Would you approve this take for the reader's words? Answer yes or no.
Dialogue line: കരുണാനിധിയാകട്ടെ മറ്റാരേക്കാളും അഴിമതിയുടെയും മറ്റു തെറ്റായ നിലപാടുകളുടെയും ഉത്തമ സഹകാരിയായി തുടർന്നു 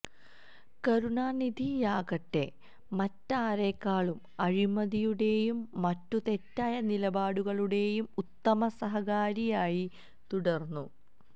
yes